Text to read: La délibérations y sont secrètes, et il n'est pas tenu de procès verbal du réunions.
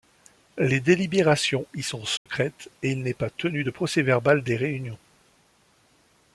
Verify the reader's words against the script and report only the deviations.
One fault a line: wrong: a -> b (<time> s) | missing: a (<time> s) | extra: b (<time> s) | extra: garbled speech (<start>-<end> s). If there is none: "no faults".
wrong: La -> Les (0.6 s)
wrong: du -> des (4.4 s)